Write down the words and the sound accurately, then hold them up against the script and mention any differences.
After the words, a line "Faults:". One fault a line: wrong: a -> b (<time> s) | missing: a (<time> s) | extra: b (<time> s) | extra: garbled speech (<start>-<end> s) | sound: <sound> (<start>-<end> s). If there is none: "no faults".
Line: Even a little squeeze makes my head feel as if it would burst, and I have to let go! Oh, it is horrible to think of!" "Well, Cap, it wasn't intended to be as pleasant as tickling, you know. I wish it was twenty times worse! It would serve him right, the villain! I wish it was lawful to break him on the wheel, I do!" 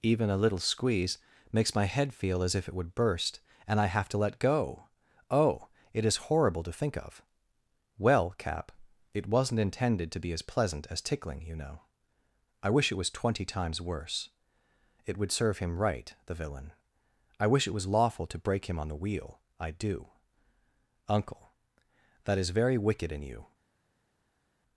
Even a little squeeze makes my head feel as if it would burst, and I have to let go! Oh, it is horrible to think of!" "Well, Cap, it wasn't intended to be as pleasant as tickling, you know. I wish it was twenty times worse! It would serve him right, the villain! I wish it was lawful to break him on the wheel, I do!" "Uncle, that is very wicked in you
Faults:
extra: Uncle that is very wicked in you (21.1 s)